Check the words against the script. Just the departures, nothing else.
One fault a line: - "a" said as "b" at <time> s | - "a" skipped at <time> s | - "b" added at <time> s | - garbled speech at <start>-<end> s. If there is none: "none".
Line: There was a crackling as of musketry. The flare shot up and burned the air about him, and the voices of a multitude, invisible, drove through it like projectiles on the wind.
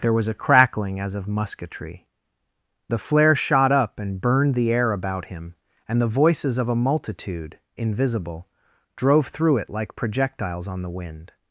none